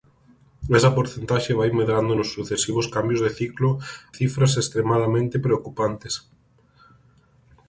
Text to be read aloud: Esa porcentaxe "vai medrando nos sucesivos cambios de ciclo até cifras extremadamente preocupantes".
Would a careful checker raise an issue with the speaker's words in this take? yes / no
yes